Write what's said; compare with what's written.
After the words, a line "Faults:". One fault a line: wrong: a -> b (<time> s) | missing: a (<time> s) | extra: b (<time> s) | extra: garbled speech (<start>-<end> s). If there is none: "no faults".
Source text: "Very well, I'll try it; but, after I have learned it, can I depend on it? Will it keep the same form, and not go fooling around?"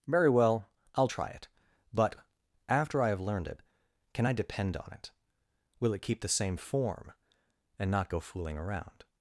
"Very well, I'll try it; but, after I have learned it, can I depend on it? Will it keep the same form, and not go fooling around?"
Faults:
no faults